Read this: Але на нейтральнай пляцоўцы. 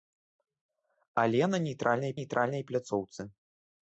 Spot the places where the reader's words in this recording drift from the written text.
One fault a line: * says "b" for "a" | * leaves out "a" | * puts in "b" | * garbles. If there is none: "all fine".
* puts in "нейтральнай"